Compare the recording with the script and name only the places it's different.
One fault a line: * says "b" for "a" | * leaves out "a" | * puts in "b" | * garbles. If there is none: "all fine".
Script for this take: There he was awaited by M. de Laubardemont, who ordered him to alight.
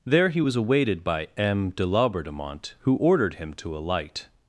all fine